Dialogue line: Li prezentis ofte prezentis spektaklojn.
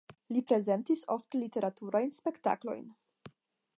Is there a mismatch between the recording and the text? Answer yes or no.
yes